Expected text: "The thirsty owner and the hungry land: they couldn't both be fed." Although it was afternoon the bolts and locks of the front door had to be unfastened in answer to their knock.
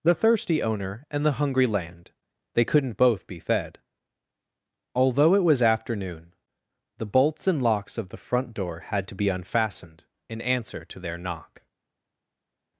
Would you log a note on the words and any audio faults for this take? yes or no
no